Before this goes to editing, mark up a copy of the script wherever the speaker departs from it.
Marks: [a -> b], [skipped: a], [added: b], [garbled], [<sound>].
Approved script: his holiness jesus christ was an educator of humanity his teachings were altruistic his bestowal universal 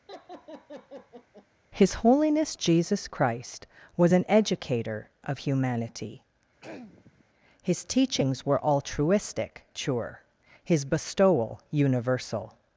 [laugh] his holiness jesus christ was an educator of humanity [throat clearing] his teachings were altruistic [added: sure] his bestowal universal